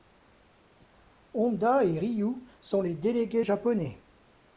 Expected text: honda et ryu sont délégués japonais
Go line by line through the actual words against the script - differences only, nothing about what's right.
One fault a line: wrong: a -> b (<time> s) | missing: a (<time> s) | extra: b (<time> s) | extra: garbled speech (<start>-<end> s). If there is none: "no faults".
extra: les (2.8 s)